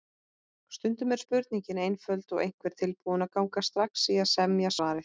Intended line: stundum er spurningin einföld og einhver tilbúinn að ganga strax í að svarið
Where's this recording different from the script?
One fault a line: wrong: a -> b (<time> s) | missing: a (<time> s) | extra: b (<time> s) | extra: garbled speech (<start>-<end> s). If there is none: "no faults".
extra: semja (4.4 s)